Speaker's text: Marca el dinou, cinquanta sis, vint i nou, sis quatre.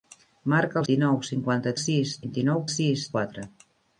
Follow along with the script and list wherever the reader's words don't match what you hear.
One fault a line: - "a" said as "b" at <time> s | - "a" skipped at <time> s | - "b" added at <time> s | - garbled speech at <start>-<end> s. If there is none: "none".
none